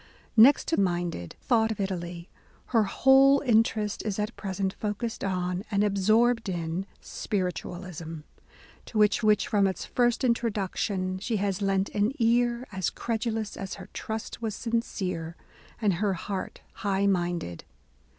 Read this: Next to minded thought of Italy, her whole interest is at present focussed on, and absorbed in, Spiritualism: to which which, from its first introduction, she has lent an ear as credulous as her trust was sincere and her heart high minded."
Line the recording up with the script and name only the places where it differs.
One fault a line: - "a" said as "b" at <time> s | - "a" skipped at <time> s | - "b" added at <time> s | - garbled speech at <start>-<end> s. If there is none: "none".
none